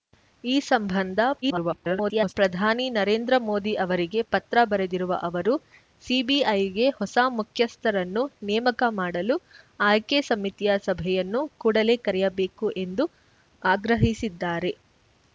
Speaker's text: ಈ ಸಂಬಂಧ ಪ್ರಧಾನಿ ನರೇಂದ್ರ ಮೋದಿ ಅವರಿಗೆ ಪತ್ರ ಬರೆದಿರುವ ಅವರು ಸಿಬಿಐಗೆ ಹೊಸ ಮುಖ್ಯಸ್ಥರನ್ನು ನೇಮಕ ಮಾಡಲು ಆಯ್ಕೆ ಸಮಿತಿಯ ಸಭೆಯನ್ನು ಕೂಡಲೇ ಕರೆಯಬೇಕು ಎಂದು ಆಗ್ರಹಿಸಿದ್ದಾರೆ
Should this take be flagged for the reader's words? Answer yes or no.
yes